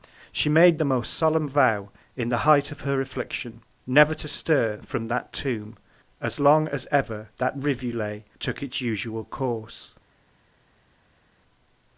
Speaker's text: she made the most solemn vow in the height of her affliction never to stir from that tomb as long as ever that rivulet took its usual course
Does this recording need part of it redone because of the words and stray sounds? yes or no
no